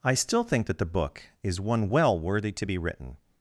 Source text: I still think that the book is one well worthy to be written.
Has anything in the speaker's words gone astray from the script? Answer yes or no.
no